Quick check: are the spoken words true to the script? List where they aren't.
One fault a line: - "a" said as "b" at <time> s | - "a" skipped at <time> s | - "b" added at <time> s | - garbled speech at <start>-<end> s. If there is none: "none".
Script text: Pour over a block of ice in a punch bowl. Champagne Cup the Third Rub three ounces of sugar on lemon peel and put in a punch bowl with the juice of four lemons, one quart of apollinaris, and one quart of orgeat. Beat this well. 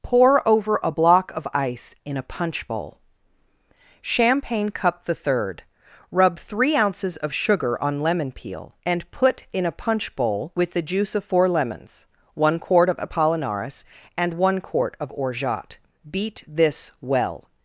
none